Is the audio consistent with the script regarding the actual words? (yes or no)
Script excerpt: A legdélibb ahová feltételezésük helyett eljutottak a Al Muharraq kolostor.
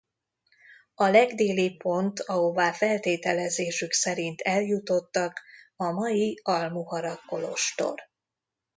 no